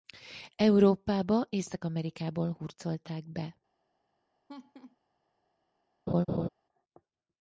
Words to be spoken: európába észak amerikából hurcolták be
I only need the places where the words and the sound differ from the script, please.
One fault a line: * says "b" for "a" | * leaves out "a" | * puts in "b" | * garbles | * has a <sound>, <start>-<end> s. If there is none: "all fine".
* has a laugh, 4.5-5.0 s
* has a laugh, 6.1-6.5 s